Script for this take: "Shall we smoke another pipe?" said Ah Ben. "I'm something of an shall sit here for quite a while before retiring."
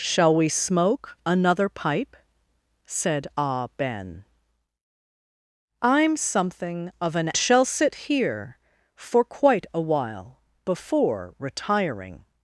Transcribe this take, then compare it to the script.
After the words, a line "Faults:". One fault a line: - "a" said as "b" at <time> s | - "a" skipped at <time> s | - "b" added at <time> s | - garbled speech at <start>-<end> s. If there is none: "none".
"Shall we smoke another pipe?" said Ah Ben. "I'm something of an shall sit here for quite a while before retiring."
Faults:
none